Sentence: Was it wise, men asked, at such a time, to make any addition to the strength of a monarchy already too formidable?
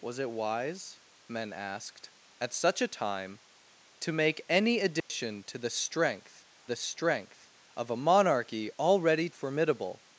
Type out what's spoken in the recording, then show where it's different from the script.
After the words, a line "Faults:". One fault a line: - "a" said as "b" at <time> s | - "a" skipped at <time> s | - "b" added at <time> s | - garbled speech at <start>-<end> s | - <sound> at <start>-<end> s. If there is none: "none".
Was it wise, men asked, at such a time, to make any addition to the strength the strength of a monarchy already formidable?
Faults:
- dropout at 5.0-5.1 s
- "the strength" added at 6.7 s
- "too" skipped at 9.3 s